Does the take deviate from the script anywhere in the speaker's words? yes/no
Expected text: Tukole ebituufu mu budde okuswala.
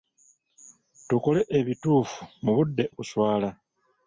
no